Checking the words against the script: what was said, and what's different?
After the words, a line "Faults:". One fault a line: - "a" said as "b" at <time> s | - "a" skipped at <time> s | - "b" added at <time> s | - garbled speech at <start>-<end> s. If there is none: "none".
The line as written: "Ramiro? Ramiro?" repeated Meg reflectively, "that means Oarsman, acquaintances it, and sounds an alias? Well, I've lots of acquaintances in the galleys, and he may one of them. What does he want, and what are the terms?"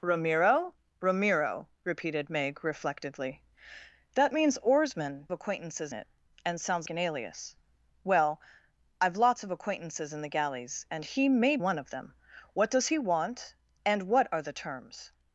"Ramiro? Ramiro?" repeated Meg reflectively, "that means Oarsman, acquaintances it, and sounds an alias? Well, I've lots of acquaintances in the galleys, and he may one of them. What does he want, and what are the terms?"
Faults:
none